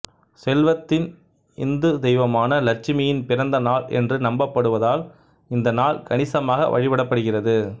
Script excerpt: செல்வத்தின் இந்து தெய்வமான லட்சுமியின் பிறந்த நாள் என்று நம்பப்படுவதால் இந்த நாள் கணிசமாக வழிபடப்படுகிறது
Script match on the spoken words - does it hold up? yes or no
yes